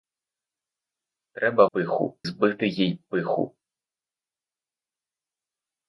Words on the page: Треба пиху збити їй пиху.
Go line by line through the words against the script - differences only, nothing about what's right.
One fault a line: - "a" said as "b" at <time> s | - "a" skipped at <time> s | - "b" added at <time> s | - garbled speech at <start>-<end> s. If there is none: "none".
none